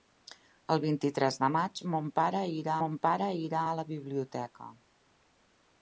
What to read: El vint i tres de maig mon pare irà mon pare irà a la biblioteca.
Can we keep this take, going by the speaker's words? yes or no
yes